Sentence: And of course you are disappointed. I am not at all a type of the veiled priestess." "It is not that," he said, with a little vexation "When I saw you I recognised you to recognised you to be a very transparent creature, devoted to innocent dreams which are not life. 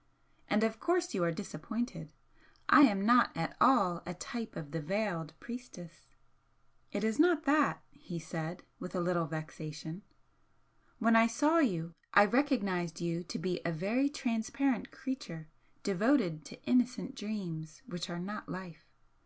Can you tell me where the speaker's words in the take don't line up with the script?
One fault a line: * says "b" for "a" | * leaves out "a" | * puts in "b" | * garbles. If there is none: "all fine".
* leaves out "recognised you to"